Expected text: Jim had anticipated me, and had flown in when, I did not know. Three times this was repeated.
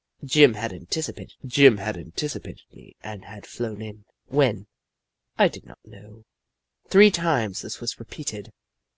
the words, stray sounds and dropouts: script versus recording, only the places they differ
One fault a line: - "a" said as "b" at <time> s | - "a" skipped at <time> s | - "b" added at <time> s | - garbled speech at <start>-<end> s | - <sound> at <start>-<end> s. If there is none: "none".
- "jim had anticipated" added at 1.5 s